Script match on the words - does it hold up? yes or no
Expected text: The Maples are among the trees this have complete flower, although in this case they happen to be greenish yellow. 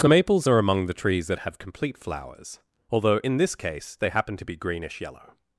no